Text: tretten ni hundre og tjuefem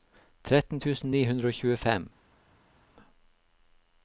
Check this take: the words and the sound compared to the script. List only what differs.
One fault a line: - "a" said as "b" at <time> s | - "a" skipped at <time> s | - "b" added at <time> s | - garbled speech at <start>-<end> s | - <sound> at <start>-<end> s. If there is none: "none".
- "tusen" added at 0.8 s